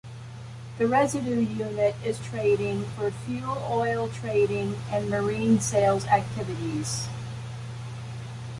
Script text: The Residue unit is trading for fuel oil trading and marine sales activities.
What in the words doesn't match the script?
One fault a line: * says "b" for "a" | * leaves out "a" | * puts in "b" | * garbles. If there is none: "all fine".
all fine